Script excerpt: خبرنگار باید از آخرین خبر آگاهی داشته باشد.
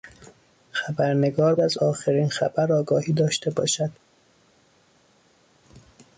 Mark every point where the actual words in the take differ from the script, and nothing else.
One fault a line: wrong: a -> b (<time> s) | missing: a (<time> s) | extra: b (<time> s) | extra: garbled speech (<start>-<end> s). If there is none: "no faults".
missing: باید (1.6 s)